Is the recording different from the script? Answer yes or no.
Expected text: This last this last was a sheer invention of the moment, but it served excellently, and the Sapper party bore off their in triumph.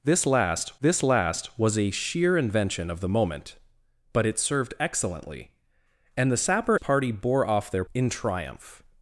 no